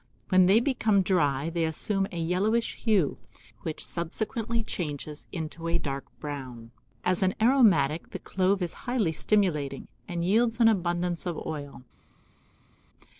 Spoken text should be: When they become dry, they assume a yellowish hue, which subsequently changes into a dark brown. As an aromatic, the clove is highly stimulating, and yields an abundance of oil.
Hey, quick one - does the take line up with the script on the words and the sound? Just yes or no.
yes